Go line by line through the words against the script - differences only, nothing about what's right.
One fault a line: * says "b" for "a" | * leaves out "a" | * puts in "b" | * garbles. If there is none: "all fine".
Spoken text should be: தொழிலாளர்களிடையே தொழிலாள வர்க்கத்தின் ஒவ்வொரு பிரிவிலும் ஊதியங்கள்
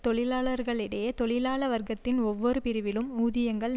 all fine